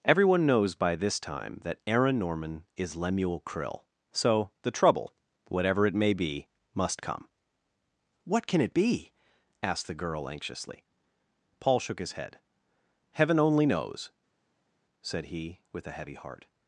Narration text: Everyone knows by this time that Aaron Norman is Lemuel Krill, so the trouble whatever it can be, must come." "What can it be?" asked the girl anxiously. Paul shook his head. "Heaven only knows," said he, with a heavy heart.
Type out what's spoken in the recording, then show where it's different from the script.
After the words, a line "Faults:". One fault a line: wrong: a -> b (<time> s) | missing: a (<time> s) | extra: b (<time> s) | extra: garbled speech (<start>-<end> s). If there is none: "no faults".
Everyone knows by this time that Aaron Norman is Lemuel Krill, so the trouble whatever it may be, must come." "What can it be?" asked the girl anxiously. Paul shook his head. "Heaven only knows," said he, with a heavy heart.
Faults:
wrong: can -> may (5.9 s)